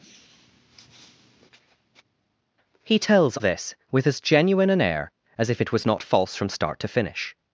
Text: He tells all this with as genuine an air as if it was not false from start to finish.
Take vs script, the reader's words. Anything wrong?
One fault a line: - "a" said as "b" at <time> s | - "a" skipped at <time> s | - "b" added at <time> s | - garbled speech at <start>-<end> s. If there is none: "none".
- "all" skipped at 3.4 s